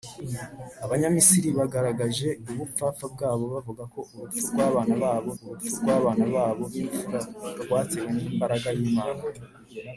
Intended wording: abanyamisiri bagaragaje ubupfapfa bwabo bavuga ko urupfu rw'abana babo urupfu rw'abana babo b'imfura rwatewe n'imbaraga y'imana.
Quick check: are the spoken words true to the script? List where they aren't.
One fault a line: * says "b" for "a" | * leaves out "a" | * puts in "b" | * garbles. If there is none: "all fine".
all fine